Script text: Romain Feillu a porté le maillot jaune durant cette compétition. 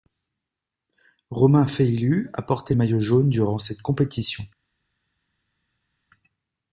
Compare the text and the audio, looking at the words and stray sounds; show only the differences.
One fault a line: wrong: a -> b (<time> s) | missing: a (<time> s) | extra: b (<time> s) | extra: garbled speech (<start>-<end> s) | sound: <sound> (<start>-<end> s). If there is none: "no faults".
missing: le (2.7 s)